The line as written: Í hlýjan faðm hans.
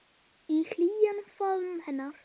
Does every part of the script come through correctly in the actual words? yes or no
no